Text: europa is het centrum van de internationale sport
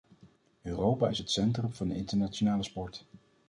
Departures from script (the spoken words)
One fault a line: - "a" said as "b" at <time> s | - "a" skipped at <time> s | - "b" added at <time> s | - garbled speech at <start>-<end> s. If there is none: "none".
none